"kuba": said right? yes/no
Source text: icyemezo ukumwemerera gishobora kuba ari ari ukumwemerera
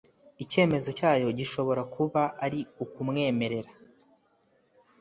yes